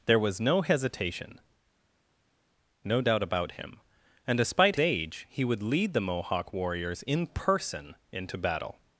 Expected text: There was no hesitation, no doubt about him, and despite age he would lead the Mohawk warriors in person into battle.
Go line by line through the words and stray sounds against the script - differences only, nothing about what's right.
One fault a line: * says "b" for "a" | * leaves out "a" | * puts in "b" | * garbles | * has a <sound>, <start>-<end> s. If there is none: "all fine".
all fine